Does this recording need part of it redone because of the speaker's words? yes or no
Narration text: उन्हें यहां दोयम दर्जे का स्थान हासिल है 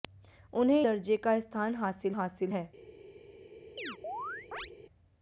yes